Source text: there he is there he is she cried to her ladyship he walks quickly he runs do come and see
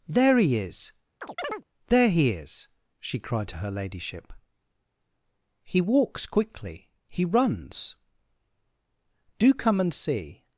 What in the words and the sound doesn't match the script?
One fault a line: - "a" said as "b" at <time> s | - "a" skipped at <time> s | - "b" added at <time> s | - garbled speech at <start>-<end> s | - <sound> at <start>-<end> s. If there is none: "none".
- chirp at 1.2-1.6 s